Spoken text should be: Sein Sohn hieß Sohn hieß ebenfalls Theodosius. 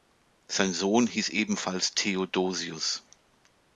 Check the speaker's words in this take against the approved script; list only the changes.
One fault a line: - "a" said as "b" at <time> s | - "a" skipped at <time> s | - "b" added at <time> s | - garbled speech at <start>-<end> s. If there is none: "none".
- "Sohn hieß" skipped at 1.3 s